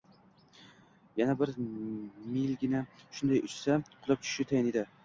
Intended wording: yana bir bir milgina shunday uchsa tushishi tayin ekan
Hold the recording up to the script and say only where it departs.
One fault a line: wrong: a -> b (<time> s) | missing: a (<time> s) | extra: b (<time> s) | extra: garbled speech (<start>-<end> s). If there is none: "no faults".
missing: bir (1.5 s)
extra: qulab (4.0 s)
wrong: ekan -> edi (4.8 s)